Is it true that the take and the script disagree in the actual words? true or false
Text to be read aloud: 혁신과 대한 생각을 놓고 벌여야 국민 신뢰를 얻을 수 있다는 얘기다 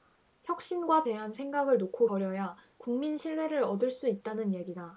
false